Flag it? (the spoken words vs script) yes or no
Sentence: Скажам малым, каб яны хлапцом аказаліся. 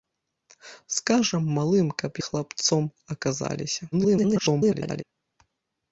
yes